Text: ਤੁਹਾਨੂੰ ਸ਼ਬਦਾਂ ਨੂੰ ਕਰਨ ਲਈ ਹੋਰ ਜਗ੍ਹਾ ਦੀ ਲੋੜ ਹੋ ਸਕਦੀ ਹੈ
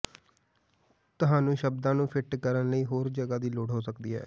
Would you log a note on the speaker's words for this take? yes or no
yes